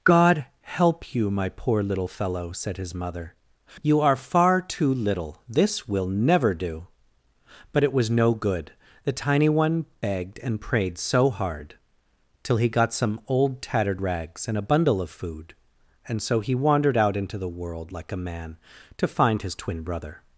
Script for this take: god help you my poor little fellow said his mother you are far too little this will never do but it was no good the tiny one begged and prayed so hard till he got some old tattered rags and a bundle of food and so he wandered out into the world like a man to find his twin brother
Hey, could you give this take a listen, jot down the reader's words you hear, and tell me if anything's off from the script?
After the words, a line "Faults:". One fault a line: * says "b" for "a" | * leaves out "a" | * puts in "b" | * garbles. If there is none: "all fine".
god help you my poor little fellow said his mother you are far too little this will never do but it was no good the tiny one begged and prayed so hard till he got some old tattered rags and a bundle of food and so he wandered out into the world like a man to find his twin brother
Faults:
all fine